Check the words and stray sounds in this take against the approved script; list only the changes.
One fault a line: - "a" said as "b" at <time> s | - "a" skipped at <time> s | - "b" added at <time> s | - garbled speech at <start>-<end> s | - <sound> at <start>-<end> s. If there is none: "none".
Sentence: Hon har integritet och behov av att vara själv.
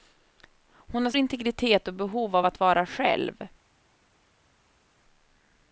none